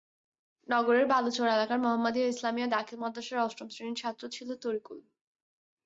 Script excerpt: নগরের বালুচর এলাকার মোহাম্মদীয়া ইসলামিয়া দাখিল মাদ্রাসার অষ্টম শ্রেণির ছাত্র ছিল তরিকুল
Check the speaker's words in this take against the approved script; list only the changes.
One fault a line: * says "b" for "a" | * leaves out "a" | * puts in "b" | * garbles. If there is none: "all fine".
all fine